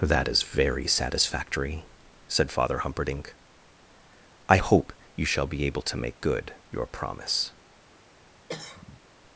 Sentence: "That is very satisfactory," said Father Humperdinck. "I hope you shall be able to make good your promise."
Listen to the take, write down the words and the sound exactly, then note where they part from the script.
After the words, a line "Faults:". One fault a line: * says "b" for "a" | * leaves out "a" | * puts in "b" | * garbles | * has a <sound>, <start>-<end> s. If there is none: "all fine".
"That is very satisfactory," said Father Humperdinck. "I hope you shall be able to make good your promise."
Faults:
* has a cough, 8.5-9.0 s